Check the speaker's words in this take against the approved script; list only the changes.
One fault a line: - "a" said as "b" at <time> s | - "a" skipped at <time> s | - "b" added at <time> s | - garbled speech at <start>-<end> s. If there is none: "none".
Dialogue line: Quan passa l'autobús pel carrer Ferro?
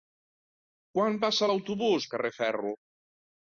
- "pel" skipped at 2.1 s